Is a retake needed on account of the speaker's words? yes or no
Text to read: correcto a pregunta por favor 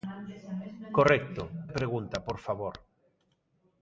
no